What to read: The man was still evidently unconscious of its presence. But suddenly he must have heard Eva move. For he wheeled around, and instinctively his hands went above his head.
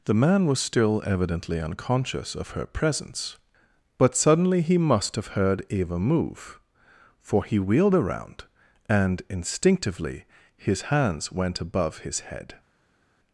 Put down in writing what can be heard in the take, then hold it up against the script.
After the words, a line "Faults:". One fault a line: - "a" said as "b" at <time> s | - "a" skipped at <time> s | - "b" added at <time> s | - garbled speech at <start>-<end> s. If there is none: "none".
The man was still evidently unconscious of her presence. But suddenly he must have heard Eva move. For he wheeled around, and instinctively his hands went above his head.
Faults:
- "its" said as "her" at 2.5 s